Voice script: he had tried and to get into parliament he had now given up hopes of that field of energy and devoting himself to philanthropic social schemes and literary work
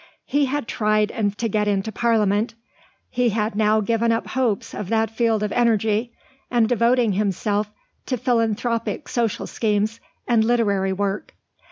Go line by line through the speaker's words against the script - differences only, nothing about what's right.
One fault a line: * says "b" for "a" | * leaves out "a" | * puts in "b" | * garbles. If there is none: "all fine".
all fine